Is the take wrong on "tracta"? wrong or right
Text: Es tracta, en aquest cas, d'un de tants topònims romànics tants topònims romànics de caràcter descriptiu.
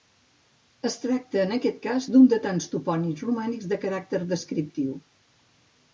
right